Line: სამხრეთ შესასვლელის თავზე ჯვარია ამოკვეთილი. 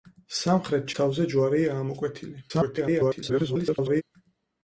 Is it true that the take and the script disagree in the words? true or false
true